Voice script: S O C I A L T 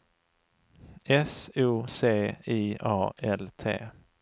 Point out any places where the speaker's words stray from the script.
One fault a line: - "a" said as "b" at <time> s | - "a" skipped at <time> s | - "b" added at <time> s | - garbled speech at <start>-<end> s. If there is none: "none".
none